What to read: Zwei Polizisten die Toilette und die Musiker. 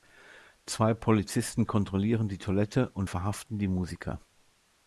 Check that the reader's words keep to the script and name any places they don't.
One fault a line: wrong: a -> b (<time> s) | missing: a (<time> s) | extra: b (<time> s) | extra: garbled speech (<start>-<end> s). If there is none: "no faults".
extra: kontrollieren (1.7 s)
extra: verhaften (3.1 s)